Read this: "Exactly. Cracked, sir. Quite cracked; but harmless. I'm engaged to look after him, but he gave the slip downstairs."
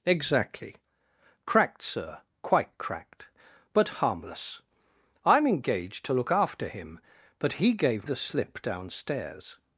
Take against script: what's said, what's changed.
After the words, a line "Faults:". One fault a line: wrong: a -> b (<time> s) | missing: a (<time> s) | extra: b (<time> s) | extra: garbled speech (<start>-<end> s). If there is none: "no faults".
"Exactly. Cracked, sir. Quite cracked; but harmless. I'm engaged to look after him, but he gave the slip downstairs."
Faults:
no faults